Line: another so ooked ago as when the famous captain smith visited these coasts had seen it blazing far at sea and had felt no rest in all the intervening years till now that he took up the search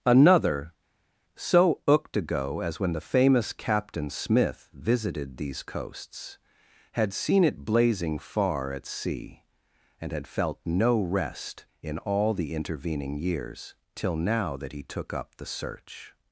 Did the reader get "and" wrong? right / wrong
right